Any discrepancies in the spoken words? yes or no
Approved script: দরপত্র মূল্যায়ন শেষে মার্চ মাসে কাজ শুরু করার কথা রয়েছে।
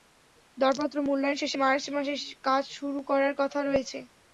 no